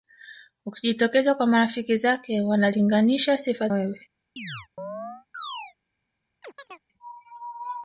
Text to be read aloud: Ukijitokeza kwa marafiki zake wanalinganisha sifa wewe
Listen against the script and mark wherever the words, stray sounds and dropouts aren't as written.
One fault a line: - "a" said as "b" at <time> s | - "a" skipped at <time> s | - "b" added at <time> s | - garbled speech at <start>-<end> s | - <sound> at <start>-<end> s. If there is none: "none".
- chirp at 4.4-5.7 s
- chirp at 6.4-6.8 s